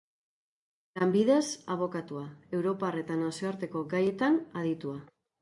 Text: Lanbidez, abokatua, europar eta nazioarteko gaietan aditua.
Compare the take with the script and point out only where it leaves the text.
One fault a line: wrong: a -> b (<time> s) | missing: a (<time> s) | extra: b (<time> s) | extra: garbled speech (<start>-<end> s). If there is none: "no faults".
no faults